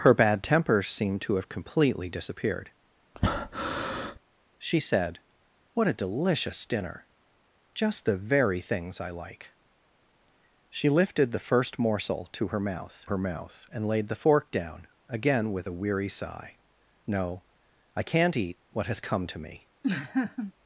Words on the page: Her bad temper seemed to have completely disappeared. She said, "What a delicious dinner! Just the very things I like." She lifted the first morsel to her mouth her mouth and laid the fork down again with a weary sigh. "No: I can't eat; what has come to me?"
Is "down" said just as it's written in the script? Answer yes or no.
yes